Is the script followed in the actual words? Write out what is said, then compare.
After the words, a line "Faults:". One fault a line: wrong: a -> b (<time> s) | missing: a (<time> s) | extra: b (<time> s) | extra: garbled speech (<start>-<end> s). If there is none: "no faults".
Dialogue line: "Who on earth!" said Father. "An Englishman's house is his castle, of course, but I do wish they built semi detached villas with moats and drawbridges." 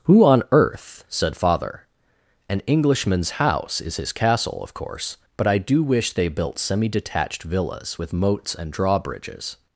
"Who on earth!" said Father. "An Englishman's house is his castle, of course, but I do wish they built semi detached villas with moats and drawbridges."
Faults:
no faults